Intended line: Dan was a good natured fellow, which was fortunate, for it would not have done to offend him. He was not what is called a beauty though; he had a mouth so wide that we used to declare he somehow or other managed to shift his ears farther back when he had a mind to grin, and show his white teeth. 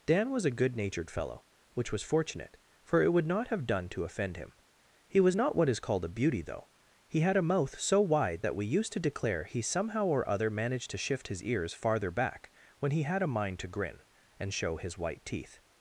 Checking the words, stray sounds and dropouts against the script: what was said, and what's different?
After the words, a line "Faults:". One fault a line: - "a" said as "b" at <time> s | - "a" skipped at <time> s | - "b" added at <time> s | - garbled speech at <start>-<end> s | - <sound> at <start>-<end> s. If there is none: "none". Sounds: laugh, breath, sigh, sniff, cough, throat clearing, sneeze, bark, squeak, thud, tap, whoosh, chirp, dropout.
Dan was a good natured fellow, which was fortunate, for it would not have done to offend him. He was not what is called a beauty though; he had a mouth so wide that we used to declare he somehow or other managed to shift his ears farther back when he had a mind to grin, and show his white teeth.
Faults:
none